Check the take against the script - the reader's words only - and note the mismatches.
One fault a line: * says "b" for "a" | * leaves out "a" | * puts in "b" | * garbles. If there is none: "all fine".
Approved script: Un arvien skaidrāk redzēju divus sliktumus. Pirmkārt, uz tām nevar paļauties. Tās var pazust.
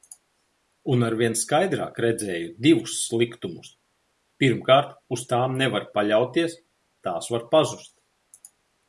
all fine